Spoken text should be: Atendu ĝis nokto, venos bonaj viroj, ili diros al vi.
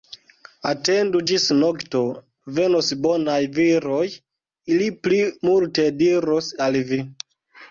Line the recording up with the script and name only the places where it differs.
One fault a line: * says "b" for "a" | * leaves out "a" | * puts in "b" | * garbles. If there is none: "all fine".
* puts in "pli multe"